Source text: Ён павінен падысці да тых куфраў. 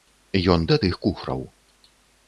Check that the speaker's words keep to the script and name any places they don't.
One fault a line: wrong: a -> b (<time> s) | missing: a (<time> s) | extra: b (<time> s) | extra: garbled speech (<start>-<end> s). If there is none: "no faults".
missing: павінен падысці (0.6 s)